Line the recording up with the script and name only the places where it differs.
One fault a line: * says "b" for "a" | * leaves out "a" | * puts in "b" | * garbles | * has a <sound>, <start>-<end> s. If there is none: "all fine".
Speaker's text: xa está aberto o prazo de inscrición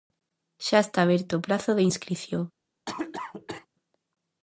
* has a cough, 2.9-3.7 s